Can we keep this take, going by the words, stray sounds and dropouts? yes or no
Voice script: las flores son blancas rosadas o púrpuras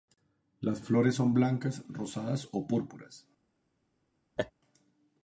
no